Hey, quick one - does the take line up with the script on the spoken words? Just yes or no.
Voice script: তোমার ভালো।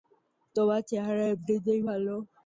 no